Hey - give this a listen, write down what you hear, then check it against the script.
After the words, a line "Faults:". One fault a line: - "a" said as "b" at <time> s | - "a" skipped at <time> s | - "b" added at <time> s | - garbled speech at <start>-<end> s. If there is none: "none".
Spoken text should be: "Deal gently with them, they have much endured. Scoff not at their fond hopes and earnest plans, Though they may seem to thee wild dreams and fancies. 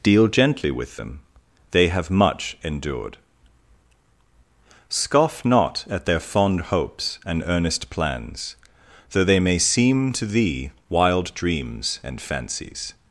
"Deal gently with them, they have much endured. Scoff not at their fond hopes and earnest plans, Though they may seem to thee wild dreams and fancies.
Faults:
none